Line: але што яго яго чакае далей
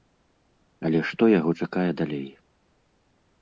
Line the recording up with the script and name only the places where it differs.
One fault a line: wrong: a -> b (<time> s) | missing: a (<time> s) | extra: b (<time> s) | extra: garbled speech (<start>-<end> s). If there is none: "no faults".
missing: яго (1.5 s)